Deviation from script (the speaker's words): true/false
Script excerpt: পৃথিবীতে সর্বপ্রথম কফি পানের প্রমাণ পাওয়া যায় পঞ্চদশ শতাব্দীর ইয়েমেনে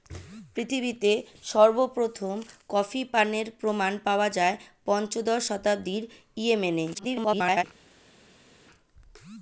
true